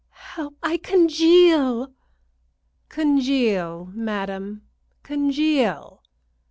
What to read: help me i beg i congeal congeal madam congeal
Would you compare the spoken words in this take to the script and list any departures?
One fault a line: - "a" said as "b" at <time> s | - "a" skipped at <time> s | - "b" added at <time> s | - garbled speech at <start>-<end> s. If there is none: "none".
- "me i beg" skipped at 0.6 s